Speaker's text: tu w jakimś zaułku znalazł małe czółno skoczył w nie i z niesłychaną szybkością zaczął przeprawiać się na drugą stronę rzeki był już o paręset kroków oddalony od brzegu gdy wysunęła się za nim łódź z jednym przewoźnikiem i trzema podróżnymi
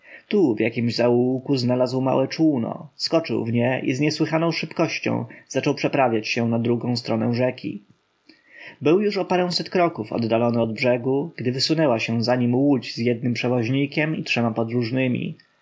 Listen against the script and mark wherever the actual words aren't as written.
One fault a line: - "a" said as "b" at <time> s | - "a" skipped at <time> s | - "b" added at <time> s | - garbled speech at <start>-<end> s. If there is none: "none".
none